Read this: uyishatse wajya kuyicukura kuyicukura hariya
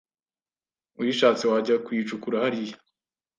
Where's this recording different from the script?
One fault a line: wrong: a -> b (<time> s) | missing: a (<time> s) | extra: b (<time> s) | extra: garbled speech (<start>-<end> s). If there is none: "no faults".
missing: kuyicukura (2.4 s)